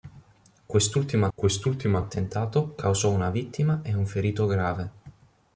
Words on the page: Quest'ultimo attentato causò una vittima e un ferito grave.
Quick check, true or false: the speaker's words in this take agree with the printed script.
false